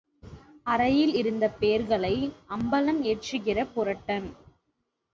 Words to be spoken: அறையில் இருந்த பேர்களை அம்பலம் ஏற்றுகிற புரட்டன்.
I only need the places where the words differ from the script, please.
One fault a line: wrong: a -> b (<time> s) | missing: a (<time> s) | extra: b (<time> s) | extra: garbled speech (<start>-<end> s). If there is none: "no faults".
no faults